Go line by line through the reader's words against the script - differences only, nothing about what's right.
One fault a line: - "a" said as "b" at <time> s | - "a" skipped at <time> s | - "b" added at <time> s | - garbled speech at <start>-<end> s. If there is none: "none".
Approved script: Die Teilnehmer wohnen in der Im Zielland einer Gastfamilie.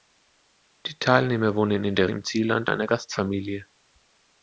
none